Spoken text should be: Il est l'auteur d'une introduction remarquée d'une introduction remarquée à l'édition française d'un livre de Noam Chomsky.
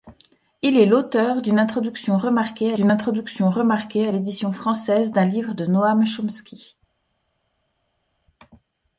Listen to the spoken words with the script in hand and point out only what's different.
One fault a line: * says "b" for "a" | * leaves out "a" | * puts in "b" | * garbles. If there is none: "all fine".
all fine